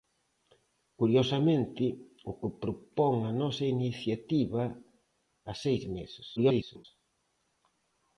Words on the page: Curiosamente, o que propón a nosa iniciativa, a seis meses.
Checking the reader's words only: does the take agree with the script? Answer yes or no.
no